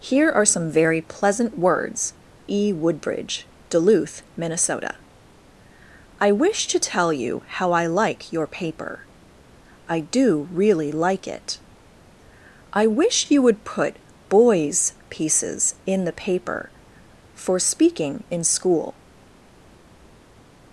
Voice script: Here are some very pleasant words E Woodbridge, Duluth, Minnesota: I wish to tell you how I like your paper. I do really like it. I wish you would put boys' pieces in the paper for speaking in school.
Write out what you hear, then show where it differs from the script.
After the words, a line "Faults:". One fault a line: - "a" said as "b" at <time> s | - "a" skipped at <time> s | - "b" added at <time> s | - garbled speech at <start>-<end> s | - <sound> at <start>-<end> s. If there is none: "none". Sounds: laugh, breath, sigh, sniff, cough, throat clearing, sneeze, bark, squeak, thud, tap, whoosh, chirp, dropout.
Here are some very pleasant words E Woodbridge, Duluth, Minnesota: I wish to tell you how I like your paper. I do really like it. I wish you would put boys' pieces in the paper for speaking in school.
Faults:
none